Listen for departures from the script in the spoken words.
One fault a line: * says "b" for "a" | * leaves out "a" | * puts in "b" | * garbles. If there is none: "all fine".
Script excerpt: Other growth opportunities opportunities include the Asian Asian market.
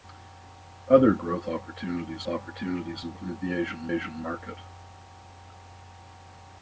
all fine